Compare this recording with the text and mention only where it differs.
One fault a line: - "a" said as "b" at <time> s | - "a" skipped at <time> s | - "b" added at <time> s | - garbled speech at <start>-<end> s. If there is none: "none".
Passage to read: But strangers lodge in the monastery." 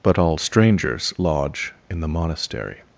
- "all" added at 0.2 s